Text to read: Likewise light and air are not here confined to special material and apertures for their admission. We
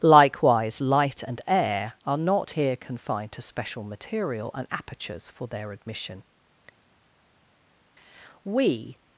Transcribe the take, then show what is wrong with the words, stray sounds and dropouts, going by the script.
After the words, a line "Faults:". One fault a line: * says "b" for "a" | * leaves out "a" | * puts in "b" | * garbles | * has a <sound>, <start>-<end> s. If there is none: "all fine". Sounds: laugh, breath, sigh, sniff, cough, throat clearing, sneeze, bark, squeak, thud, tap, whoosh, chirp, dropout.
Likewise light and air are not here confined to special material and apertures for their admission. We
Faults:
all fine